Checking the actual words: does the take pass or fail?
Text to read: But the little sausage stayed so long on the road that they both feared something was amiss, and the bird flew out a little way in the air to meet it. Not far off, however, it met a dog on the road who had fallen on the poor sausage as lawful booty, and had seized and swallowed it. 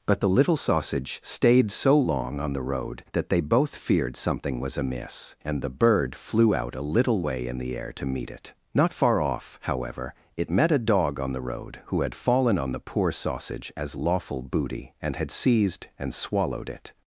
pass